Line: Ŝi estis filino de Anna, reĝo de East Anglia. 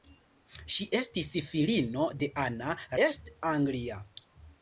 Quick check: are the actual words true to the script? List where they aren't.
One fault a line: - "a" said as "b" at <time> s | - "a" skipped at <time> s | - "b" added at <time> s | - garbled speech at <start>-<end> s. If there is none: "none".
- "reĝo de" skipped at 2.8 s